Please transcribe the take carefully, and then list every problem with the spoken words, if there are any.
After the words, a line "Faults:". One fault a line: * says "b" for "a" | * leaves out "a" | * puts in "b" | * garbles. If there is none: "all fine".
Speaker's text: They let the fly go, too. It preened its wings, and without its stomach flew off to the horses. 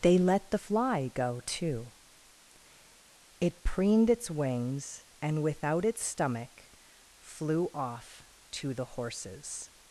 They let the fly go, too. It preened its wings, and without its stomach flew off to the horses.
Faults:
all fine